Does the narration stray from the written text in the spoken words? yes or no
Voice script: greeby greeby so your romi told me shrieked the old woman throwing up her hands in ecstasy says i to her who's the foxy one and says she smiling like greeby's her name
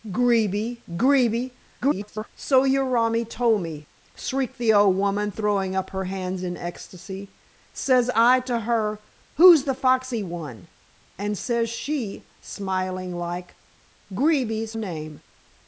yes